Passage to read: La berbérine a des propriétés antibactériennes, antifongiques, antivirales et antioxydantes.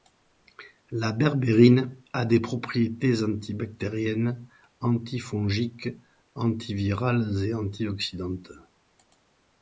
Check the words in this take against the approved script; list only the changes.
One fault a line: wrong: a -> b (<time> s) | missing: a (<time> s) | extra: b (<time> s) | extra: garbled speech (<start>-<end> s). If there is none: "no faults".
no faults